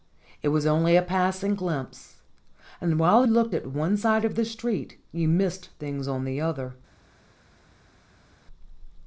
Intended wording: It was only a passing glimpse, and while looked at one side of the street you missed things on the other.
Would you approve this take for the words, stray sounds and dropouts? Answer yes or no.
yes